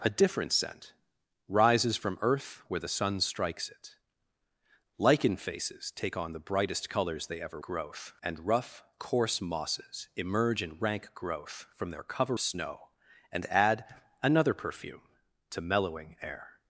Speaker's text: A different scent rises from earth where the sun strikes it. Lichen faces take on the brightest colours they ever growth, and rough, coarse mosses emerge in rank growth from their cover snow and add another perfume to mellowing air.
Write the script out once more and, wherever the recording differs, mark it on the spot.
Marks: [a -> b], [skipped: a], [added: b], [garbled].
A different scent rises from earth where the sun strikes it. Lichen faces take on the brightest colours they ever growth, and rough, coarse mosses emerge in rank growth from their cover snow and add another perfume to mellowing air.